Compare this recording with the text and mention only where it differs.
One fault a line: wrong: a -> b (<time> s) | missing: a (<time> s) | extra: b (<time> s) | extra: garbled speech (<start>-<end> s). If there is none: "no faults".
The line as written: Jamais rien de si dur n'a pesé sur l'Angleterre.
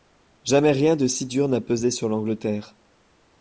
no faults